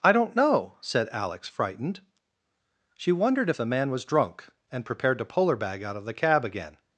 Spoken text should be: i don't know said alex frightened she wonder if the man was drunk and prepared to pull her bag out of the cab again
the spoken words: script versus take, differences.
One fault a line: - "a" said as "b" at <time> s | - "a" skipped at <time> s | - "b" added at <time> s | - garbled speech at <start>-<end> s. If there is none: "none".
- "wonder" said as "wondered" at 3.1 s